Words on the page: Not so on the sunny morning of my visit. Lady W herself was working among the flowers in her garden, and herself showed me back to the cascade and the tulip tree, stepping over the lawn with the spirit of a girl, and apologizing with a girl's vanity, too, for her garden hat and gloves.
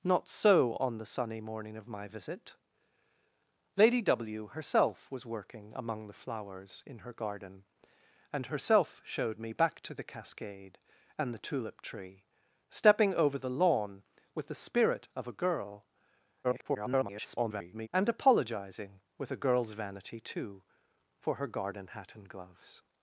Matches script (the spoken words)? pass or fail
fail